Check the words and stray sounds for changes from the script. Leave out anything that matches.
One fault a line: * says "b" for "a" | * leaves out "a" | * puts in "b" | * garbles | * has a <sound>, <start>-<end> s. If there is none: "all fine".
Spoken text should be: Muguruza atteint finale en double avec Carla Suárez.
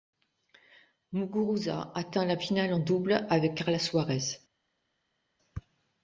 * puts in "la"